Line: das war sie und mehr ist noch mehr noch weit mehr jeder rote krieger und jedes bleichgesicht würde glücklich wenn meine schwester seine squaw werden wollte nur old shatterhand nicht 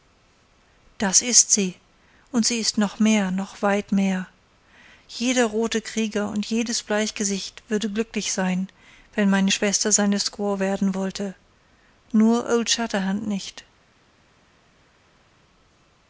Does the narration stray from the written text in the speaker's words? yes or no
yes